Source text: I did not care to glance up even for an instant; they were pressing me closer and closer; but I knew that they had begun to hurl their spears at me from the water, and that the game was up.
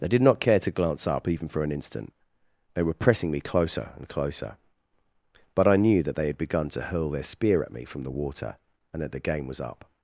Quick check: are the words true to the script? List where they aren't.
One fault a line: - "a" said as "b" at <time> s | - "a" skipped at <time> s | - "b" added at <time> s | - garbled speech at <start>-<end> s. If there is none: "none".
- "spears" said as "spear" at 7.2 s